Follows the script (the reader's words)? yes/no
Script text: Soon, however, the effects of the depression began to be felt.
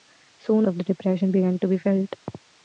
no